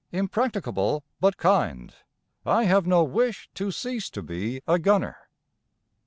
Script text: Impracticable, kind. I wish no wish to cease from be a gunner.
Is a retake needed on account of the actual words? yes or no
yes